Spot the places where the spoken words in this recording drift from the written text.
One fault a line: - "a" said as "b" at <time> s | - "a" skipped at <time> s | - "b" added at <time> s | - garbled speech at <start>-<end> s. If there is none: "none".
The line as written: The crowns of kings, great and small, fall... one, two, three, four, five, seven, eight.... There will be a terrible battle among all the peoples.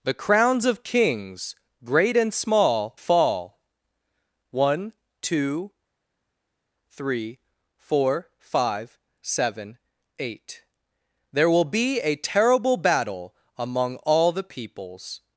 none